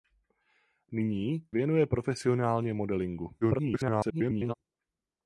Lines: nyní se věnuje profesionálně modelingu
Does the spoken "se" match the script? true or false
false